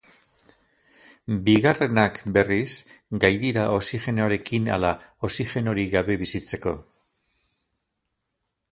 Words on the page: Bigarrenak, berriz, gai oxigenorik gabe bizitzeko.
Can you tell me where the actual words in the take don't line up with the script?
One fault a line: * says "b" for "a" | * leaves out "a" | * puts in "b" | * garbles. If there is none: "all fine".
* puts in "dira oxigenoarekin ala"